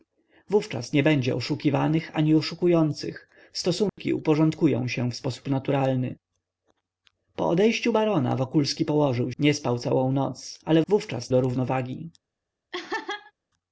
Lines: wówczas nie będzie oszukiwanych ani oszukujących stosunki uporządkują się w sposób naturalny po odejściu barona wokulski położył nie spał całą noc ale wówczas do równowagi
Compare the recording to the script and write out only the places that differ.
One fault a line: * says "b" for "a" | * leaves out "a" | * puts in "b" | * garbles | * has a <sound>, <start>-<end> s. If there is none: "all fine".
* has a dropout, 3.9-4.0 s
* has a laugh, 12.7-13.3 s